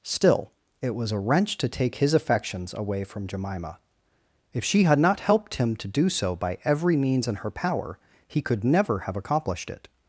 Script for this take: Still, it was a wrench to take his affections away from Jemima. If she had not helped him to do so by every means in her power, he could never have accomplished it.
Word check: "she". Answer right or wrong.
right